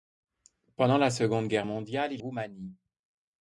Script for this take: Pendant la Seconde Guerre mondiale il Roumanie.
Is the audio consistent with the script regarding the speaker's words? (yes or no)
yes